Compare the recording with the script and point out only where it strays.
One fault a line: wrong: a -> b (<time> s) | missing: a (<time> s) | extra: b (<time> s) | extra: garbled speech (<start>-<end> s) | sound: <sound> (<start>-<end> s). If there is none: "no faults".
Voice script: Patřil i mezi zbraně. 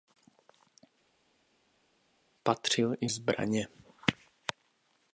missing: mezi (3.1 s)